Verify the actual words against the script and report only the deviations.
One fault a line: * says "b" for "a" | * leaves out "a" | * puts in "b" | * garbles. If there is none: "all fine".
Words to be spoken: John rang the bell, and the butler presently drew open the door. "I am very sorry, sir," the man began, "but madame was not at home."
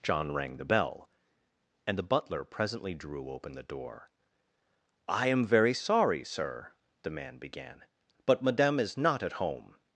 * says "is" for "was"